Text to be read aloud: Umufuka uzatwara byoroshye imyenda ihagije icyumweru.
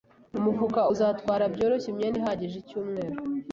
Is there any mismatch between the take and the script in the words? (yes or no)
no